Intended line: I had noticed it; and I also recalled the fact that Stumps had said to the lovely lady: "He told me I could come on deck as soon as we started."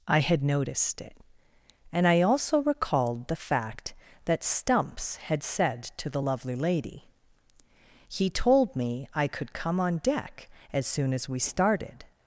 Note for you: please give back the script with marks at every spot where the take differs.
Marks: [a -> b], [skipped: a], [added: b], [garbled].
I had noticed it; and I also recalled the fact that Stumps had said to the lovely lady: "He told me I could come on deck as soon as we started."